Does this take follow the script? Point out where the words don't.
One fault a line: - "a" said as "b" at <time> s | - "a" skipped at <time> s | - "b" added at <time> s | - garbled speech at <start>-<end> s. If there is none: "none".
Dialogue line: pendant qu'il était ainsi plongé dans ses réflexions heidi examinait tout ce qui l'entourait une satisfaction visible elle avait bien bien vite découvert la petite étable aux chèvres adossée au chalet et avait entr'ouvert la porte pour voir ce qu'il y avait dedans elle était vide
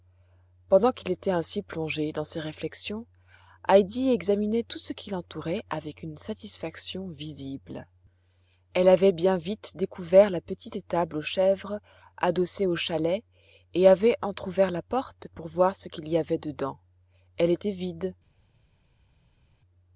- "avec" added at 5.7 s
- "bien" skipped at 9.4 s